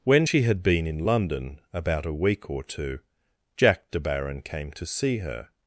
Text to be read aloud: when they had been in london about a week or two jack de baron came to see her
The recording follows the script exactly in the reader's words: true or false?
false